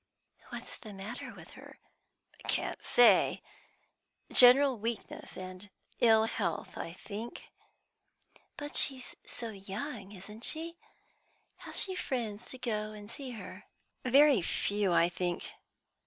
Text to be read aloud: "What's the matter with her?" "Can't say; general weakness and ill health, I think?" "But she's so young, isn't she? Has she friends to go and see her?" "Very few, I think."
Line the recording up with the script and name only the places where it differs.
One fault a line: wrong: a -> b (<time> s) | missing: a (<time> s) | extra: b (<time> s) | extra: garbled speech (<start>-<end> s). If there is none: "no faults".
no faults